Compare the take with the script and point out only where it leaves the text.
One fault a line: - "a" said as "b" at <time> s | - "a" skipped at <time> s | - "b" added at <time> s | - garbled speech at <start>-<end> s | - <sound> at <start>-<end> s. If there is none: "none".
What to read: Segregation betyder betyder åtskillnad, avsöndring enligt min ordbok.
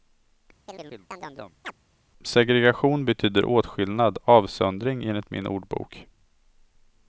- chirp at 0.7-1.7 s
- "betyder" skipped at 3.4 s